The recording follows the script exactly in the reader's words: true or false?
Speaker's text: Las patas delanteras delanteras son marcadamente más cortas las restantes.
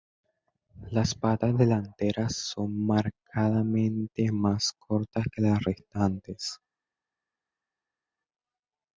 false